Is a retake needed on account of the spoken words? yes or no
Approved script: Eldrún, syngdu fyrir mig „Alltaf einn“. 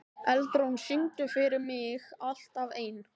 no